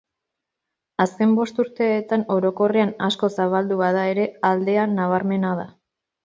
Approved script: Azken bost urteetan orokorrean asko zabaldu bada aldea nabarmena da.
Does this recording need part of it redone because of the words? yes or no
yes